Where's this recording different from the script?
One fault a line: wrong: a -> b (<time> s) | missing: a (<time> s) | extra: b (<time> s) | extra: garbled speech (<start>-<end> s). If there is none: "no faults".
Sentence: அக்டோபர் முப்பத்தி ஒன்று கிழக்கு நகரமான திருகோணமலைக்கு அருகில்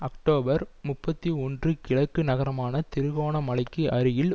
no faults